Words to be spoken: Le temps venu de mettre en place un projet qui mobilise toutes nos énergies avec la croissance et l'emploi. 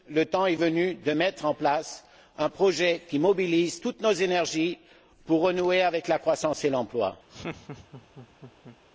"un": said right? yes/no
yes